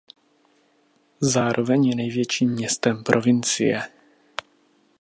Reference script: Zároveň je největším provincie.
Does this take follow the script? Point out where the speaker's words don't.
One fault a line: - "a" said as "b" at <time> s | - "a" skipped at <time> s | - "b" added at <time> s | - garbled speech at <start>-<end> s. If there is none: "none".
- "městem" added at 2.5 s